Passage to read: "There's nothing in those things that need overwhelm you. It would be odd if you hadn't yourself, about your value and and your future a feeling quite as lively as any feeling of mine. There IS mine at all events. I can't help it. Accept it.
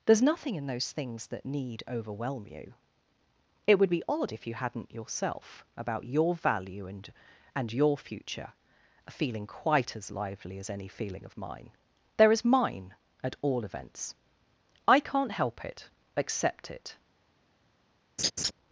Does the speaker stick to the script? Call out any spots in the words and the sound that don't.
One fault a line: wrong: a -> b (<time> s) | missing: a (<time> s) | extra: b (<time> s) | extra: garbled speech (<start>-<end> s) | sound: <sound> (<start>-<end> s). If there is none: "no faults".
sound: laugh (18.2-18.5 s)